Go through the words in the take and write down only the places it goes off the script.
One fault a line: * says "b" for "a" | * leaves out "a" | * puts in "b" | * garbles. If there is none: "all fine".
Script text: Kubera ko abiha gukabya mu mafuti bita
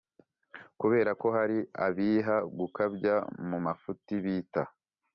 * puts in "hari"